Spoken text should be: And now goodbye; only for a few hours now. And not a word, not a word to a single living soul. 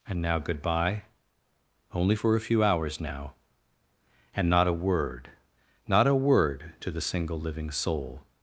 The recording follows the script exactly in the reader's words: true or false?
false